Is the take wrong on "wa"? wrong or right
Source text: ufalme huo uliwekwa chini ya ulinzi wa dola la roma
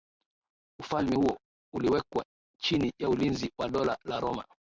right